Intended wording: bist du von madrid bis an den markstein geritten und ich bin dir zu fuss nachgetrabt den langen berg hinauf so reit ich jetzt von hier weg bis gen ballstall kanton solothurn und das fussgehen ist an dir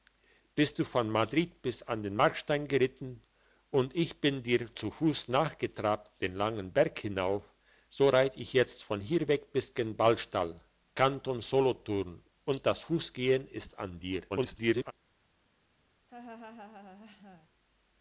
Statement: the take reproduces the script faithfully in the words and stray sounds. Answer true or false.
false